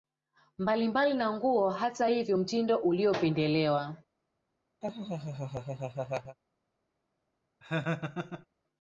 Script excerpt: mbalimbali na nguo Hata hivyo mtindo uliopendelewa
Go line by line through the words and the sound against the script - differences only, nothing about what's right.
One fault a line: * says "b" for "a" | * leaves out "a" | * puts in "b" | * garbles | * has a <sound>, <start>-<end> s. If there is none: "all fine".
* has a laugh, 4.8-6.4 s
* has a laugh, 7.6-8.5 s